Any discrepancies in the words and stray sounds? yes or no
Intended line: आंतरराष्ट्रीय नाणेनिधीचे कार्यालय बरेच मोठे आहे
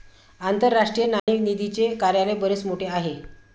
yes